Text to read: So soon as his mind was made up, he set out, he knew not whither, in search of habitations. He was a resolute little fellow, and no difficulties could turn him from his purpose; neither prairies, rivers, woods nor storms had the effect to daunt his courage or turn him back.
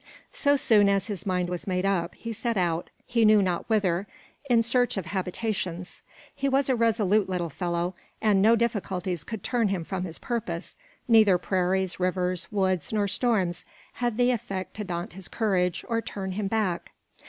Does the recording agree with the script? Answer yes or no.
yes